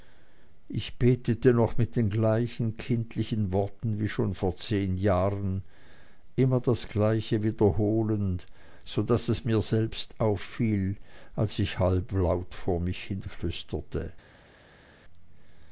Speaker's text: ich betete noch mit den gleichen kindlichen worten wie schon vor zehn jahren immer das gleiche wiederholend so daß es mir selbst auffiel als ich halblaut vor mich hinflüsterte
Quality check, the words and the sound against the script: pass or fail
pass